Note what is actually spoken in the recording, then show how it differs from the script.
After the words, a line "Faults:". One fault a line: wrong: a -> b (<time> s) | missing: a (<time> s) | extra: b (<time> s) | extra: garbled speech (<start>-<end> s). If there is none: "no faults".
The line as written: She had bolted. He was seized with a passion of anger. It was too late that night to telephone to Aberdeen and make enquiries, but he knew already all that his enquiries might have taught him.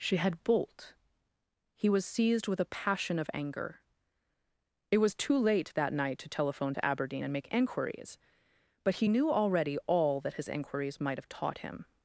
She had bolt. He was seized with a passion of anger. It was too late that night to telephone to Aberdeen and make enquiries, but he knew already all that his enquiries might have taught him.
Faults:
wrong: bolted -> bolt (0.4 s)